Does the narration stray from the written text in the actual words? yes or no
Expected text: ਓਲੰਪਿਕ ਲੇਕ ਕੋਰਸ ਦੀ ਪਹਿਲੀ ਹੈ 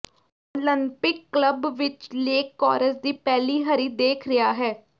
yes